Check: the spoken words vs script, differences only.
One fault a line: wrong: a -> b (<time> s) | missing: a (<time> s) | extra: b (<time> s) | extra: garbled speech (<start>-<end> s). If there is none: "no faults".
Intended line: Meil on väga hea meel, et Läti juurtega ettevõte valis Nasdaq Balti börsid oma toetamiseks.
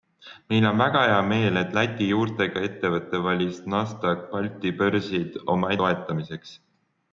no faults